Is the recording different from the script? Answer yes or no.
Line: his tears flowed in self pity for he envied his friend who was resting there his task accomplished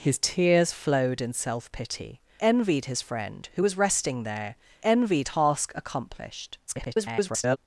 yes